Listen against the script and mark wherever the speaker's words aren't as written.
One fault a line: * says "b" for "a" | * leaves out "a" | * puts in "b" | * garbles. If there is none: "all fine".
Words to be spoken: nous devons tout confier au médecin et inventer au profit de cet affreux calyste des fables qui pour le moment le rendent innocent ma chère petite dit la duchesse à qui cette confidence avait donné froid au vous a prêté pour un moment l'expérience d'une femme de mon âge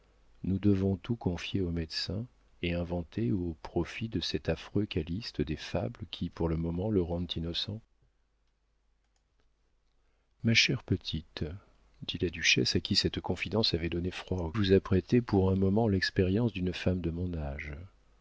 all fine